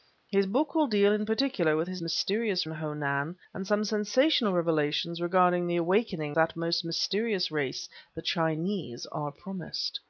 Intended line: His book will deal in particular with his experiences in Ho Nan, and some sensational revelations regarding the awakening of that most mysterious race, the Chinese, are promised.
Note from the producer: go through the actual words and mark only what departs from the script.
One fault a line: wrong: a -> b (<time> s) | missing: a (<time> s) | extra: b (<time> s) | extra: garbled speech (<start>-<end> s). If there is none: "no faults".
wrong: experiences -> mysterious (2.0 s)
missing: of (6.4 s)